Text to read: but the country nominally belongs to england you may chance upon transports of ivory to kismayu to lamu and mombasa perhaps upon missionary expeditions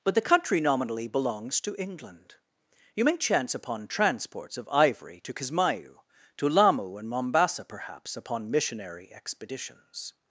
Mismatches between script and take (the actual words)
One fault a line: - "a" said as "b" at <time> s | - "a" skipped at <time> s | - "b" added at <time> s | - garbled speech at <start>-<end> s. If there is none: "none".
none